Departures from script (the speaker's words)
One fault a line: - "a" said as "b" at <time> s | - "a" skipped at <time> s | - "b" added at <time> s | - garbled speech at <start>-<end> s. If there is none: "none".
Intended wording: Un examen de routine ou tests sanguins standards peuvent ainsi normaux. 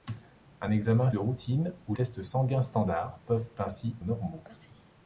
none